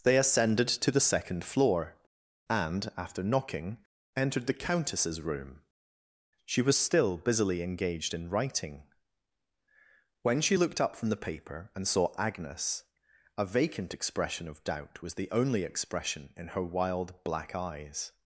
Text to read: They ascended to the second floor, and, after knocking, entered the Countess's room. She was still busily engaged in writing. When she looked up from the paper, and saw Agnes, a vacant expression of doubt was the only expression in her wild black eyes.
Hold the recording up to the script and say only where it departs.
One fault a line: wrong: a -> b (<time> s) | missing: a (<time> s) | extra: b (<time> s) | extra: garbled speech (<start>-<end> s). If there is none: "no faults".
no faults